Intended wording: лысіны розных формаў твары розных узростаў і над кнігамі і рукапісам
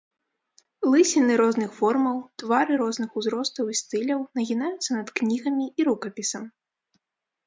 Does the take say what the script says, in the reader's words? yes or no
no